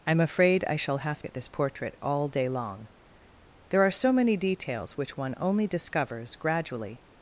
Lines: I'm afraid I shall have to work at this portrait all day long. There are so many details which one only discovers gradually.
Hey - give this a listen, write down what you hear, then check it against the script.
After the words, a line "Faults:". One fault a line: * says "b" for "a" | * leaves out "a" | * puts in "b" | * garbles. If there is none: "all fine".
I'm afraid I shall have at this portrait all day long. There are so many details which one only discovers gradually.
Faults:
* leaves out "to work"